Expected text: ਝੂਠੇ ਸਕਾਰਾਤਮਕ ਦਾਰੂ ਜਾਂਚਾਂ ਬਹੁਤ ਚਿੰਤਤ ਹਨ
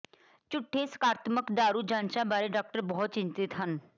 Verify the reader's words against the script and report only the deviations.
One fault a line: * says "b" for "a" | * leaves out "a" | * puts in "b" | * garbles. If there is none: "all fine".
* puts in "ਬਾਰੇ ਡਾਕਟਰ"